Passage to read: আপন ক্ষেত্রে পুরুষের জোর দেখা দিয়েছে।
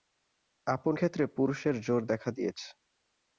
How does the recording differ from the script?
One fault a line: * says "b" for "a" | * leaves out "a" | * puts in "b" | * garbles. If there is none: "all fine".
all fine